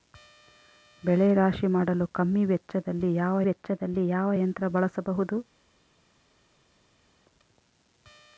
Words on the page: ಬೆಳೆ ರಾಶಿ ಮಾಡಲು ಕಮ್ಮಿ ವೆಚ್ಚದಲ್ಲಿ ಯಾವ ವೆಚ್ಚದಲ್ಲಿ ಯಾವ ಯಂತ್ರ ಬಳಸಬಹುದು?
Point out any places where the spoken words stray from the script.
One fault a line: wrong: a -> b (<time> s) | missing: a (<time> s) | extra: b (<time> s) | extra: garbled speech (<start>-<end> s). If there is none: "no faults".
no faults